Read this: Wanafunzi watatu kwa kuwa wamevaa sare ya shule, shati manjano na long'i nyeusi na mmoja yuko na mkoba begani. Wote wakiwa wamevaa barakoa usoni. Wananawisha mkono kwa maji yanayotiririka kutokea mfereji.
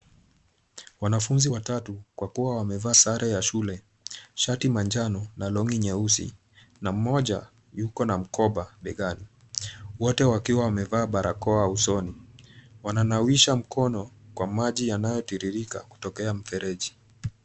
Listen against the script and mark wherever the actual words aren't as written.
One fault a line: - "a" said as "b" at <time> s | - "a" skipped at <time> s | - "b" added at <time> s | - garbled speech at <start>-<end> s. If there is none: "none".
none